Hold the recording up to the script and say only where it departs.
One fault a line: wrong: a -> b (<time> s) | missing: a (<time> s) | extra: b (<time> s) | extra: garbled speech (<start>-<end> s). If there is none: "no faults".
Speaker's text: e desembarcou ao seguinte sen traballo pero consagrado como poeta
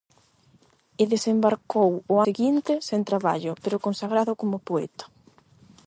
no faults